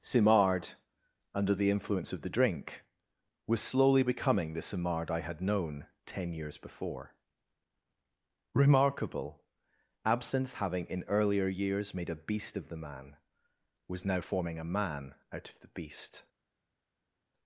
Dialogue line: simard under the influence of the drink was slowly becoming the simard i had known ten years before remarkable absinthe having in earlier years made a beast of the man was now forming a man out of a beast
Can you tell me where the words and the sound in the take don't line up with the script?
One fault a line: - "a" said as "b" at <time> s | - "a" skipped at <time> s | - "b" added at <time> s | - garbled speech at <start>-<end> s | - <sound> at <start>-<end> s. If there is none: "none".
- "a" said as "the" at 15.6 s